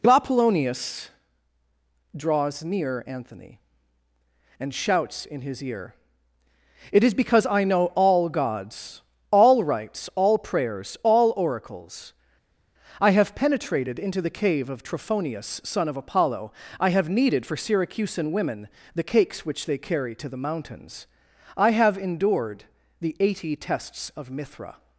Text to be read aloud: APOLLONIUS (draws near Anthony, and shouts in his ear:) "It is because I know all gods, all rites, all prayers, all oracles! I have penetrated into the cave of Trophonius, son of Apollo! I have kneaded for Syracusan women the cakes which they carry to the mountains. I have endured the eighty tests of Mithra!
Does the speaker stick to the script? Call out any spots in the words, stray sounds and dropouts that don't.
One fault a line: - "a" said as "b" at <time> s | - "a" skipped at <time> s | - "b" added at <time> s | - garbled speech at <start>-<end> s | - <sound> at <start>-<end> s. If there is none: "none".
none